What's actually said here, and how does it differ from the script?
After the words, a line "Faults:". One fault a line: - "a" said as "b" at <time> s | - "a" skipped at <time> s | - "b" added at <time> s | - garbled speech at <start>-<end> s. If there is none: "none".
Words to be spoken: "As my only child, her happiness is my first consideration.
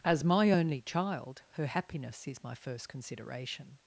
"As my only child, her happiness is my first consideration.
Faults:
none